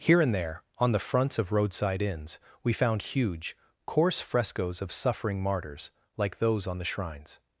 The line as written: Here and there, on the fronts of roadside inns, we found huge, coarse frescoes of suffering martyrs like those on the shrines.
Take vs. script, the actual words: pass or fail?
pass